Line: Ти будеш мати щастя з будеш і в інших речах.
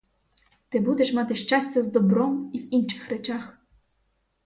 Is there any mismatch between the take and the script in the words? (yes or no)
yes